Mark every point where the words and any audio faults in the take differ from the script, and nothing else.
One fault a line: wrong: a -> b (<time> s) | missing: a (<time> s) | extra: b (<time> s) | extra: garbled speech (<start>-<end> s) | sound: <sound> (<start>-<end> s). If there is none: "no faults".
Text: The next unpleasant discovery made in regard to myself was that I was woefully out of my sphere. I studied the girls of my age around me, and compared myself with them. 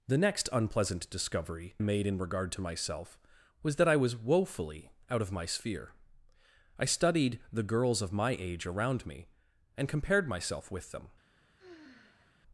sound: sigh (11.6-12.4 s)